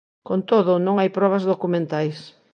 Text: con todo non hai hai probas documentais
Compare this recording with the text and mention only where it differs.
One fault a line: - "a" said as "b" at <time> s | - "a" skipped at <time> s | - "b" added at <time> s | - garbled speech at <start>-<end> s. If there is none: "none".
- "hai" skipped at 1.1 s